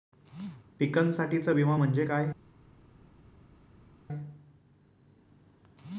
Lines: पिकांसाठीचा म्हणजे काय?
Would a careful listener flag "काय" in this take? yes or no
no